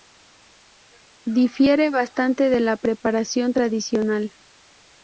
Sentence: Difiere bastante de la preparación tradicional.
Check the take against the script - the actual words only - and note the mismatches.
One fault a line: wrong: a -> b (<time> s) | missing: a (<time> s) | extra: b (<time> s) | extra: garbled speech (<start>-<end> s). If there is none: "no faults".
no faults